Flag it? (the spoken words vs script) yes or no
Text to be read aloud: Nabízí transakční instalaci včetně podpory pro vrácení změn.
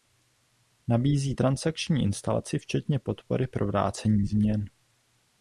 no